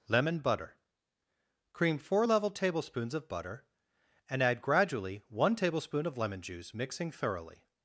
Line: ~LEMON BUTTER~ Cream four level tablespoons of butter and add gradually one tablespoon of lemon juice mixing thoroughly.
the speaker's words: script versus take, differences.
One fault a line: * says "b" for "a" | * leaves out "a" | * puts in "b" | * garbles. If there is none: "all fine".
all fine